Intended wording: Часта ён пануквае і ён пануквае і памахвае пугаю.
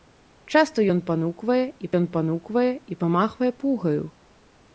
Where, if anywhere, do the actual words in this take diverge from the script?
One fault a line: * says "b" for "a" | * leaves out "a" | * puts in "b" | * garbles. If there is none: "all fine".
all fine